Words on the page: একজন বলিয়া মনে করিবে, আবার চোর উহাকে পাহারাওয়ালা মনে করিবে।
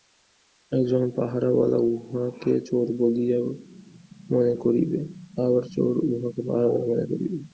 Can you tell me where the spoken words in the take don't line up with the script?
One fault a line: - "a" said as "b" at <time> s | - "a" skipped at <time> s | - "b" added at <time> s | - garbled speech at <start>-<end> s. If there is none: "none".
- "পাহারাওয়ালা উহাকে চোর" added at 1.1 s